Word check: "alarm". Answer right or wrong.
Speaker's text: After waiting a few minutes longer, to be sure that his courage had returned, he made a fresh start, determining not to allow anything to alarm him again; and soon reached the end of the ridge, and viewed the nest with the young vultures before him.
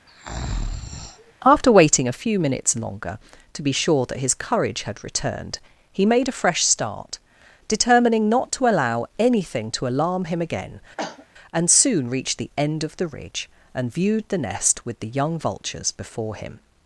right